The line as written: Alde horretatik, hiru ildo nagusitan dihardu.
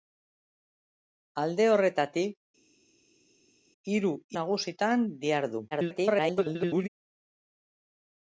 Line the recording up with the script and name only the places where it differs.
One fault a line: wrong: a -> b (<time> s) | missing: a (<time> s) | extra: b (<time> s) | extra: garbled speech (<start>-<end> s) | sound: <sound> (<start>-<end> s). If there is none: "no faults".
missing: ildo (4.1 s)
extra: garbled speech (5.7-6.9 s)